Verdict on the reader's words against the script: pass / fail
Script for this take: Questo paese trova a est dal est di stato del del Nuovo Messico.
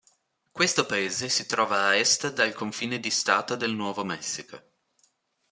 fail